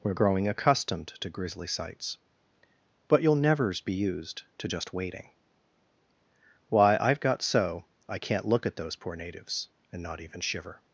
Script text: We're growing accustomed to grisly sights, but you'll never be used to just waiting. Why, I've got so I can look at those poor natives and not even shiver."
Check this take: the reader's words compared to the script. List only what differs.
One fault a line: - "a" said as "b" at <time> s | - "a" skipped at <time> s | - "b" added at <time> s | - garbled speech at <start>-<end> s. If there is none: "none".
- "never" said as "nevers" at 3.4 s
- "can" said as "can't" at 8.2 s